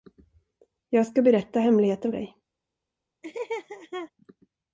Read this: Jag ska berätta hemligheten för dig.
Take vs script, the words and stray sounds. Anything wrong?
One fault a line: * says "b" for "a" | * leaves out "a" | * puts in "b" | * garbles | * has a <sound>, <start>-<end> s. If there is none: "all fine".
* leaves out "för"
* has a laugh, 3.2-4.1 s